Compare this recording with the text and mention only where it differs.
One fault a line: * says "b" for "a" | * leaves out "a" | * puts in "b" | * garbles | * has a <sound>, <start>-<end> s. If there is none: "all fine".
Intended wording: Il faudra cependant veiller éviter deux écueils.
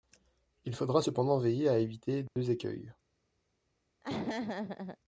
* puts in "à"
* has a dropout, 2.3-2.4 s
* has a laugh, 4.0-5.0 s